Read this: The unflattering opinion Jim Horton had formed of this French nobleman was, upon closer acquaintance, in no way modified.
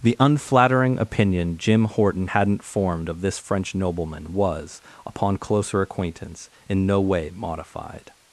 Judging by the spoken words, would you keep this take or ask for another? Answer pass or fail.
fail